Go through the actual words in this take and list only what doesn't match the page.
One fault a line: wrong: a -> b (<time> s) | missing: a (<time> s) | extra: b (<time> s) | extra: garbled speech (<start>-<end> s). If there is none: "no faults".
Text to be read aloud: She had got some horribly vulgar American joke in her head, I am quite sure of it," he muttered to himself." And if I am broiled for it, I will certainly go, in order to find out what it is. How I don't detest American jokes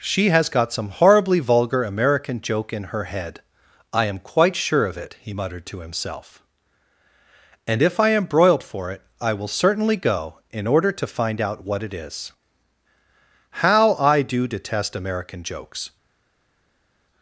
wrong: had -> has (0.3 s)
wrong: don't -> do (14.2 s)